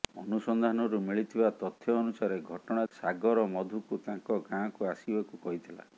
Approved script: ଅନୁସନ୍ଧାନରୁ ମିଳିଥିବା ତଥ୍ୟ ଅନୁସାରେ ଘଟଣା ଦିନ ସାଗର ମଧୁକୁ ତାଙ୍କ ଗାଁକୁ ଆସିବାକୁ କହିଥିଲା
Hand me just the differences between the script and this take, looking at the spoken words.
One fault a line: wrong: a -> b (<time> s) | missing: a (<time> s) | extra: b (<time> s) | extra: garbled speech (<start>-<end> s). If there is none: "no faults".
missing: ଦିନ (2.9 s)